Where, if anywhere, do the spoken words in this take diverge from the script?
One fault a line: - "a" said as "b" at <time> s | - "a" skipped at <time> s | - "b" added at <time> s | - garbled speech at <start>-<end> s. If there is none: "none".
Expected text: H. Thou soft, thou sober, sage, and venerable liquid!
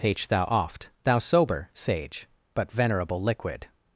- "soft" said as "oft" at 0.5 s
- "and" said as "but" at 2.5 s